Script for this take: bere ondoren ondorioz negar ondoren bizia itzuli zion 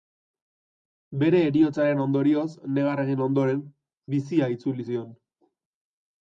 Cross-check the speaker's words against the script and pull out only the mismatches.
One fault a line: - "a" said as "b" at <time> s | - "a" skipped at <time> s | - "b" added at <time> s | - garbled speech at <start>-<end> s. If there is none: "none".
- "ondoren" said as "heriotzaren" at 1.5 s
- "egin" added at 3.0 s